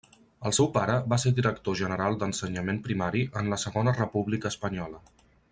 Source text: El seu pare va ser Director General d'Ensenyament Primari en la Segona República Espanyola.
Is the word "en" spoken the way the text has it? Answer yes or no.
yes